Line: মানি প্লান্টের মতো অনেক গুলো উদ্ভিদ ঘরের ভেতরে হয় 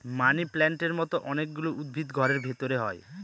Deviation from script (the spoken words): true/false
false